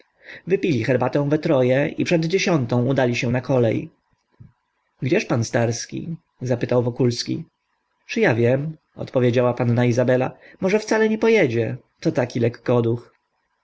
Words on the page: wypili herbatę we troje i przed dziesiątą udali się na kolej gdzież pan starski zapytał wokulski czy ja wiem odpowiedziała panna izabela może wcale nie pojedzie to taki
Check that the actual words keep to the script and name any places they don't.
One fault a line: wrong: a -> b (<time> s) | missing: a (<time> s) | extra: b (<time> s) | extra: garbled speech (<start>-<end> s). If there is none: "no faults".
no faults